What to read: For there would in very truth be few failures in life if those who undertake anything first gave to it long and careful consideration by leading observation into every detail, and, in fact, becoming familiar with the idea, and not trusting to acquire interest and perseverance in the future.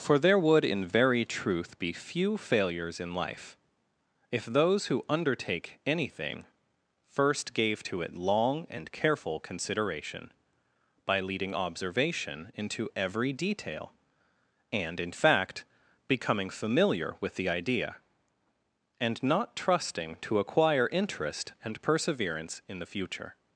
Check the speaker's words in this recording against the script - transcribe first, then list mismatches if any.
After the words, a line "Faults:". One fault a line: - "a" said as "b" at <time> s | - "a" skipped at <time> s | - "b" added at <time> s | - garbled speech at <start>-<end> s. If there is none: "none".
For there would in very truth be few failures in life if those who undertake anything first gave to it long and careful consideration by leading observation into every detail, and, in fact, becoming familiar with the idea, and not trusting to acquire interest and perseverance in the future.
Faults:
none